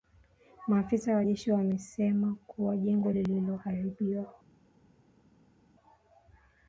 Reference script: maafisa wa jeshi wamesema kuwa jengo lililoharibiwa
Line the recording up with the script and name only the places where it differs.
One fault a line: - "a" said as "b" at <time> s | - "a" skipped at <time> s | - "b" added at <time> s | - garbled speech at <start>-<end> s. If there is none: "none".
none